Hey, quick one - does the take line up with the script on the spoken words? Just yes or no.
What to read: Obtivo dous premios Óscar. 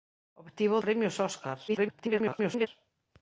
no